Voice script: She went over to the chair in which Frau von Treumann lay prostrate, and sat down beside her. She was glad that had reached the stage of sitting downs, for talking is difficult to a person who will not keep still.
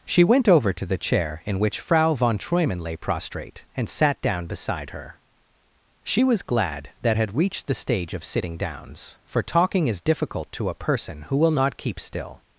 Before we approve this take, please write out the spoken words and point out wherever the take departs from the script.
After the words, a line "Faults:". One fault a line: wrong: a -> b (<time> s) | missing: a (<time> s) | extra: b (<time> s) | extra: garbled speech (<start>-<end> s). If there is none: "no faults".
She went over to the chair in which Frau von Treumann lay prostrate, and sat down beside her. She was glad that had reached the stage of sitting downs, for talking is difficult to a person who will not keep still.
Faults:
no faults